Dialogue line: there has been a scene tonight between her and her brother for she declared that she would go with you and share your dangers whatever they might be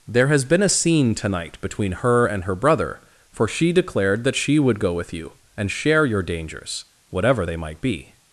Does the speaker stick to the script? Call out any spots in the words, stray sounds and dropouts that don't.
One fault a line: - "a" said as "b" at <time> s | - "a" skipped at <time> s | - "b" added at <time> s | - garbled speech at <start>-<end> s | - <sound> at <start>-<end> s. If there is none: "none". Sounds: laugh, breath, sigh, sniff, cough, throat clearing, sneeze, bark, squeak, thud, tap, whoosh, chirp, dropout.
none